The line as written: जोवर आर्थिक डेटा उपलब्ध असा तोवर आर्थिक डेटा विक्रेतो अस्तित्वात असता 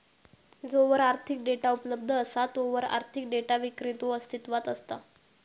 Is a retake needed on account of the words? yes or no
no